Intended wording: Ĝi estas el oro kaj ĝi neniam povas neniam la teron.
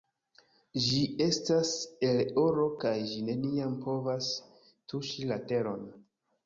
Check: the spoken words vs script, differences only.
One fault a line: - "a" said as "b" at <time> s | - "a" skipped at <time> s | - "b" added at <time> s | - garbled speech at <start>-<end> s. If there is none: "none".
- "neniam" said as "tuŝi" at 4.9 s